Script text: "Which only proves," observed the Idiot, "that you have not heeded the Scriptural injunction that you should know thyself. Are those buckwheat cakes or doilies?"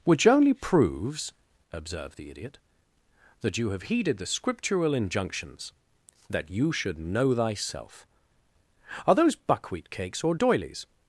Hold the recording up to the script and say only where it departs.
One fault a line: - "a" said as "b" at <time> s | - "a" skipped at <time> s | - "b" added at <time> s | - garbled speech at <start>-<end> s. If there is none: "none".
- "not" skipped at 3.8 s
- "injunction" said as "injunctions" at 4.9 s